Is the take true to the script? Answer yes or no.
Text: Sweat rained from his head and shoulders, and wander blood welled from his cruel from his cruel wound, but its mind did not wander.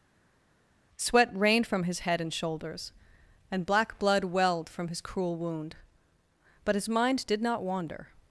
no